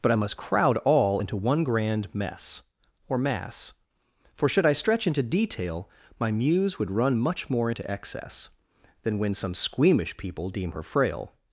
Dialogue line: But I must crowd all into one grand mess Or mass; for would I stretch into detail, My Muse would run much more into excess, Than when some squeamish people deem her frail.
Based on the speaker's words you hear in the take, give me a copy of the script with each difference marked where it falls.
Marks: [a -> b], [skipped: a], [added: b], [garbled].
But I must crowd all into one grand mess Or mass; for [would -> should] I stretch into detail, My Muse would run much more into excess, Than when some squeamish people deem her frail.